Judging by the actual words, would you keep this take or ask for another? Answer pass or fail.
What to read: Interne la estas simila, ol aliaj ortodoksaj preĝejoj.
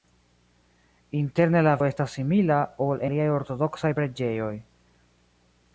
pass